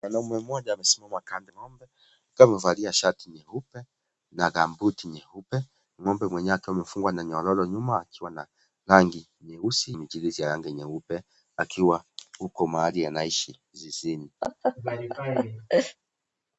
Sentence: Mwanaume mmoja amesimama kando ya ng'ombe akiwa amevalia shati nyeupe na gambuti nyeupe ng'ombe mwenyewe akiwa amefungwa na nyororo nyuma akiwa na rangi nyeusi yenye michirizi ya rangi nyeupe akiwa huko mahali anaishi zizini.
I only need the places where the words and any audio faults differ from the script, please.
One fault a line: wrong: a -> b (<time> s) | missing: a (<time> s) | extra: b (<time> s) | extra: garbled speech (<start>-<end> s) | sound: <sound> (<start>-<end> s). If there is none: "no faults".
missing: ya (1.5 s)
missing: yenye (10.0 s)
sound: laugh (14.4-16.0 s)